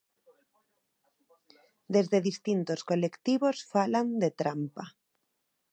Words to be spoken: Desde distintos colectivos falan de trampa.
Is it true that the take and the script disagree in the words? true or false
false